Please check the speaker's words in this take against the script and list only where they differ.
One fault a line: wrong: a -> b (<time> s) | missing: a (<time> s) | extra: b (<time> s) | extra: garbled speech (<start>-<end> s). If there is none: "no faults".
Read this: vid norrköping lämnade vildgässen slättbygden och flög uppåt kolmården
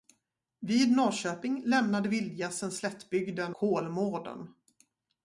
missing: och flög uppåt (3.5 s)